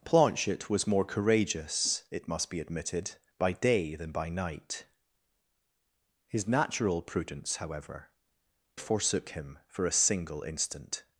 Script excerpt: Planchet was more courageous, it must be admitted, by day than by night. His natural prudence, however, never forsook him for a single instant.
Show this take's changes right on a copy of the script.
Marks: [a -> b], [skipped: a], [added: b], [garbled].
Planchet was more courageous, it must be admitted, by day than by night. His natural prudence, however, [skipped: never] forsook him for a single instant.